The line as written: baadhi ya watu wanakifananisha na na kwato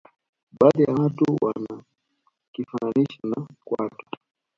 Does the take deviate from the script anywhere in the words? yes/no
yes